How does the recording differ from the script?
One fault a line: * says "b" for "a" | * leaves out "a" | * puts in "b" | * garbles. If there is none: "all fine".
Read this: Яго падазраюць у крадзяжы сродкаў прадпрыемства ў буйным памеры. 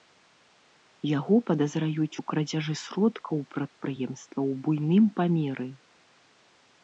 all fine